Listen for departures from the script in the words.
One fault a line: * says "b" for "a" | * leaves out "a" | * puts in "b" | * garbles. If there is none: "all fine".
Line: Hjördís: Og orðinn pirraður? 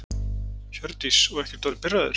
* puts in "ekkert"